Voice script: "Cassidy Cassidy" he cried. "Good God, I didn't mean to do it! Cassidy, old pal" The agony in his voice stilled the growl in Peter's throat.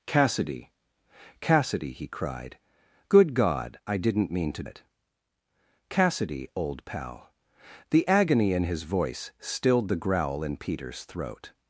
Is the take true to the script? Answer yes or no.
no